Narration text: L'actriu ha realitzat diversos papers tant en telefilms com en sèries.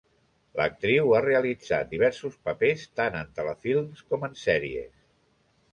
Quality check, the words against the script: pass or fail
pass